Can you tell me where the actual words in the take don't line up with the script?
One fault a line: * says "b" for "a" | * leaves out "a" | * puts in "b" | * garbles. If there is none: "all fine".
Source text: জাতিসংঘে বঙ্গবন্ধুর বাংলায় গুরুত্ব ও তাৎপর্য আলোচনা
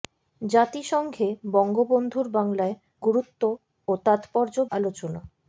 all fine